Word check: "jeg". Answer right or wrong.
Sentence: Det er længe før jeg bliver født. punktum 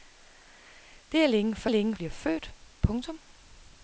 wrong